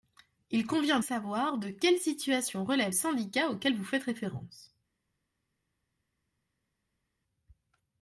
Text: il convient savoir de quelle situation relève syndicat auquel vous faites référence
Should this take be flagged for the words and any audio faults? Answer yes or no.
no